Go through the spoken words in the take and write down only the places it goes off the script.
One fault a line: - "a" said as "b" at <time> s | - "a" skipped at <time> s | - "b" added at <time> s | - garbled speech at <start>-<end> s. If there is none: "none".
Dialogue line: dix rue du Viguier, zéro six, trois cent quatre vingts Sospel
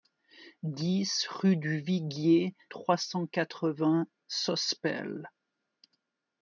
- "zéro six" skipped at 2.5 s